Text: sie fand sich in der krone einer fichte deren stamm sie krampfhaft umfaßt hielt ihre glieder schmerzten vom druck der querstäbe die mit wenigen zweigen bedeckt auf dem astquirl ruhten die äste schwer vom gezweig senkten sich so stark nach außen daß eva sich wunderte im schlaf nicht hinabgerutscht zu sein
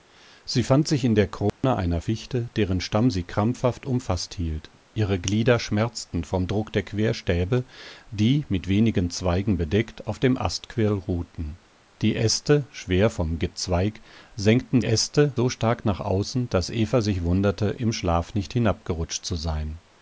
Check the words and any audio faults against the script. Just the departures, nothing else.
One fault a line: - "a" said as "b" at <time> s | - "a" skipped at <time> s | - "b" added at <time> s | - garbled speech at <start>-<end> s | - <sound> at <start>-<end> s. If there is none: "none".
- dropout at 1.5-1.6 s
- "sich" said as "äste" at 14.8 s